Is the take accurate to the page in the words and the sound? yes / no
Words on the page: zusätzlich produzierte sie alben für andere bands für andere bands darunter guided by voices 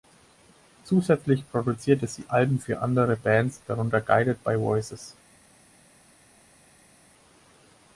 no